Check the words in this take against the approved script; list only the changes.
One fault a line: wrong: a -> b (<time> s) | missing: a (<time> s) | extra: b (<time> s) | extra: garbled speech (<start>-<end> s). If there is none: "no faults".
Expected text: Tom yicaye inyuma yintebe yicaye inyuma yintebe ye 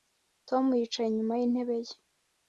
missing: yicaye inyuma yintebe (1.8 s)